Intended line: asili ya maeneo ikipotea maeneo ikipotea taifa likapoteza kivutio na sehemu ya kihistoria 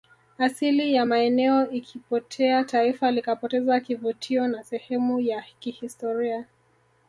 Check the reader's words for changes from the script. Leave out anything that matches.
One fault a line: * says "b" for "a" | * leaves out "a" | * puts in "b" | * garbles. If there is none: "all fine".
* leaves out "maeneo ikipotea"